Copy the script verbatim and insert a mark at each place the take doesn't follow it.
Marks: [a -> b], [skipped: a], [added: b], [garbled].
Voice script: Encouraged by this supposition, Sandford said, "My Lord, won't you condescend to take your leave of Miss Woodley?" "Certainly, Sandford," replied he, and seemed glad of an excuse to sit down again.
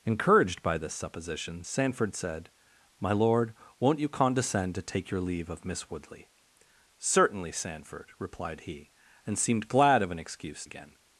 Encouraged by this supposition, Sandford said, "My Lord, won't you condescend to take your leave of Miss Woodley?" "Certainly, Sandford," replied he, and seemed glad of an excuse [skipped: to sit down] again.